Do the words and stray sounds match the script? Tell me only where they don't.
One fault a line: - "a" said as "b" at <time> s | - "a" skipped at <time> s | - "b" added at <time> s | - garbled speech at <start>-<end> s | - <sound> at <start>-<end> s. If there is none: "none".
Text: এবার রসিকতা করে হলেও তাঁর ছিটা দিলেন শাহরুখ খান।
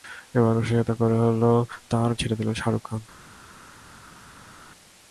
none